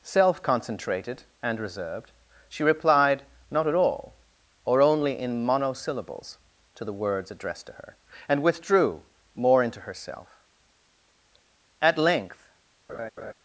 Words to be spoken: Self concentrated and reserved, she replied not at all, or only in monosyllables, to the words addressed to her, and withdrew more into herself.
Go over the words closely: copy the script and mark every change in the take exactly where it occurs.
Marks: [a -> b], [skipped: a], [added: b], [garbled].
Self concentrated and reserved, she replied not at all, or only in monosyllables, to the words addressed to her, and withdrew more into herself. [added: At length]